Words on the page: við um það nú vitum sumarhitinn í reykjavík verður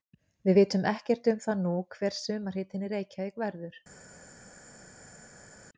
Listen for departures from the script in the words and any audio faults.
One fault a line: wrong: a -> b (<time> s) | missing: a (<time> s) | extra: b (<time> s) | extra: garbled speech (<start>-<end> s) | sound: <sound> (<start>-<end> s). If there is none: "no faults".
extra: vitum ekkert (0.6 s)
wrong: vitum -> hver (2.0 s)